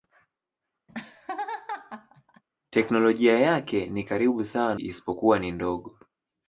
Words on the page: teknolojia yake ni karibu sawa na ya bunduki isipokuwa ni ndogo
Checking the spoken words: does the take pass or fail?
fail